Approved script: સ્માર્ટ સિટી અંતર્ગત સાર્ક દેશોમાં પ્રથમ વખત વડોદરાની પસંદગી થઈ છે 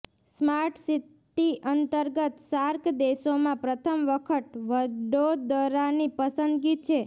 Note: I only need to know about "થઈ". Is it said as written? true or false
false